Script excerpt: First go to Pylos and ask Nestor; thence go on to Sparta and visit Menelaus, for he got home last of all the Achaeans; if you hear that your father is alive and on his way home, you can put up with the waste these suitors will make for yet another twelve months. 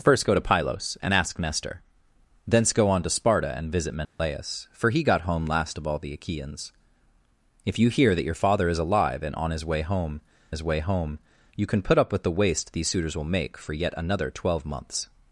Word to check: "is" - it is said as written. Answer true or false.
true